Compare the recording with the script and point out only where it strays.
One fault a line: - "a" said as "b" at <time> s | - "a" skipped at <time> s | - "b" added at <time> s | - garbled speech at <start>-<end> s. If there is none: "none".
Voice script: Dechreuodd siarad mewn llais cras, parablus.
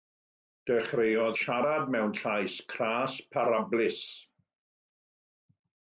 none